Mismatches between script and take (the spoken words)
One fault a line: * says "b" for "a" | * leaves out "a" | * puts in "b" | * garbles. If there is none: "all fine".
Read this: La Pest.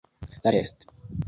all fine